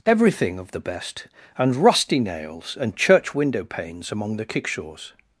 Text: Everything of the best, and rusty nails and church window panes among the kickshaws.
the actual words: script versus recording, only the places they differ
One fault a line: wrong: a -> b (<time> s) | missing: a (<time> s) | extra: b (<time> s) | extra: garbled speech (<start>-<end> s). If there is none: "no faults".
no faults